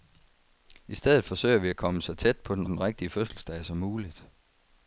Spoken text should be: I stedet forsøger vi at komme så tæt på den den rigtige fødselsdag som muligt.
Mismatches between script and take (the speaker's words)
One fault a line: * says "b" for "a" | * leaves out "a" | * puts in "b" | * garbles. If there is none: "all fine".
all fine